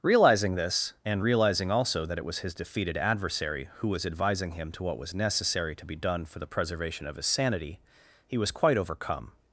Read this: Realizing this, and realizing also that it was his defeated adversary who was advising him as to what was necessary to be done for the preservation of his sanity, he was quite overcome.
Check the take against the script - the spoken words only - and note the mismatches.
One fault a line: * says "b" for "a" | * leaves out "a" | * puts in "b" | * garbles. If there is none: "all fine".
* leaves out "as"